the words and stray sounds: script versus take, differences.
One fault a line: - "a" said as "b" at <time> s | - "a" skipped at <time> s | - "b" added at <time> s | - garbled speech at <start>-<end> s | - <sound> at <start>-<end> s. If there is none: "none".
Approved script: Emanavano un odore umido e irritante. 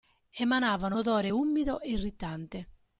- "un" skipped at 1.0 s